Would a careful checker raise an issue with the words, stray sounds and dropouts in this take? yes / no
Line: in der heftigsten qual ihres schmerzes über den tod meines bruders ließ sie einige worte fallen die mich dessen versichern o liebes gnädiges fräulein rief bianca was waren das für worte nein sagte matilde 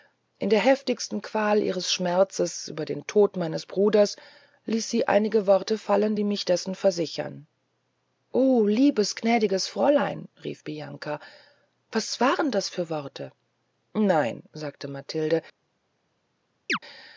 yes